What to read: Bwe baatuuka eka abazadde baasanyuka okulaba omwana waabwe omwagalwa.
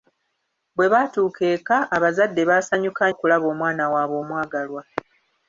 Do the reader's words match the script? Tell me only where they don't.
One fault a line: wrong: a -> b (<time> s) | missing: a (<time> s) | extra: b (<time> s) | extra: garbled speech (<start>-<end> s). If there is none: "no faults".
no faults